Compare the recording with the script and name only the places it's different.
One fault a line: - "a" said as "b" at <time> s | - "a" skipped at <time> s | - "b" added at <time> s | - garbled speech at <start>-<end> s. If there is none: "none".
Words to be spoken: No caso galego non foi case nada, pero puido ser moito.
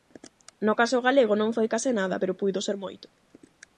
none